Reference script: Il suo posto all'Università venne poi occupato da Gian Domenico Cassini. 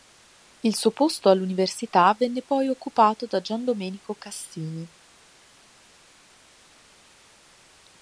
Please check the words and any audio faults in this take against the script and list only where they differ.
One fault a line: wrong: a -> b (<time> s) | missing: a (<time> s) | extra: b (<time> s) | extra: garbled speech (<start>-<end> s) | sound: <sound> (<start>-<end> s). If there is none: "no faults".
no faults